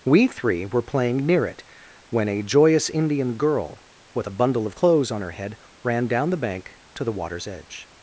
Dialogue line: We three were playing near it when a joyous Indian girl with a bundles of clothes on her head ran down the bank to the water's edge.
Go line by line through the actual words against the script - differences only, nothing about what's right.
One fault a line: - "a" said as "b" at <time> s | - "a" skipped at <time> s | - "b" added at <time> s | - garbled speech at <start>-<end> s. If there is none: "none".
- "bundles" said as "bundle" at 4.3 s